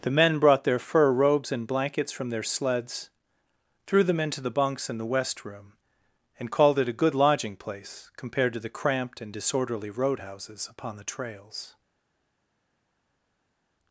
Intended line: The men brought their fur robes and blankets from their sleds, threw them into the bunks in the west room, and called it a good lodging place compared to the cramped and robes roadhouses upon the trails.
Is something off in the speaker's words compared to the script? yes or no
yes